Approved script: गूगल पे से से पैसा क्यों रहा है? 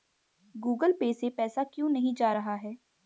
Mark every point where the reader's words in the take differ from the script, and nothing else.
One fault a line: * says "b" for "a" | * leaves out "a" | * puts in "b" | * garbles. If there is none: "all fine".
* leaves out "से"
* puts in "नहीं जा"